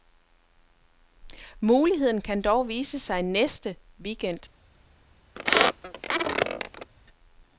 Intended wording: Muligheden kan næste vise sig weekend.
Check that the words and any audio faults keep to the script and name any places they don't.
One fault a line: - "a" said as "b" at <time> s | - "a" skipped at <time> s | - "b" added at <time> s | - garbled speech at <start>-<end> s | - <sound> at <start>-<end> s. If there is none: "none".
- "næste" said as "dog" at 2.4 s
- "næste" added at 3.2 s
- squeak at 5.4-6.9 s